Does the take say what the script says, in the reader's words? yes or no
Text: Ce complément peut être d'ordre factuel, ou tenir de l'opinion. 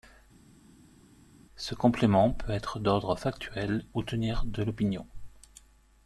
yes